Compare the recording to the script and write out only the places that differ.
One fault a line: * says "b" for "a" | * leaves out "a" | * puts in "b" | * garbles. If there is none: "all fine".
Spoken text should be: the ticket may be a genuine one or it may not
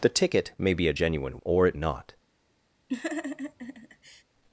* leaves out "one"
* leaves out "may"